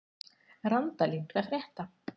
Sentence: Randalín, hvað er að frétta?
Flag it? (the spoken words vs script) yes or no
yes